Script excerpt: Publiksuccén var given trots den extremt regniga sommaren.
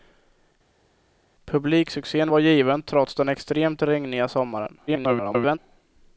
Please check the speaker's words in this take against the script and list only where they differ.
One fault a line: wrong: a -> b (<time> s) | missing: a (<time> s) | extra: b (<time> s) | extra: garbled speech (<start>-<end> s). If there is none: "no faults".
extra: garbled speech (4.9-5.6 s)